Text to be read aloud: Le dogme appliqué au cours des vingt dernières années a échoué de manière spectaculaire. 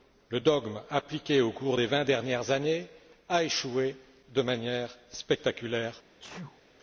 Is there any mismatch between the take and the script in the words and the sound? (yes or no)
yes